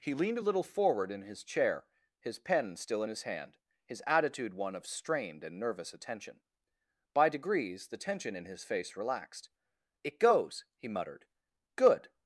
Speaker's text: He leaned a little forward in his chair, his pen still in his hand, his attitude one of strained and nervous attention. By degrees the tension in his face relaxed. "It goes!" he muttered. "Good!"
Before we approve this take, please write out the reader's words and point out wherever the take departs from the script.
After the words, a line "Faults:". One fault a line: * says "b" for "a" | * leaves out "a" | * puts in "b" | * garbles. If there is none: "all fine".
He leaned a little forward in his chair, his pen still in his hand, his attitude one of strained and nervous attention. By degrees the tension in his face relaxed. "It goes!" he muttered. "Good!"
Faults:
all fine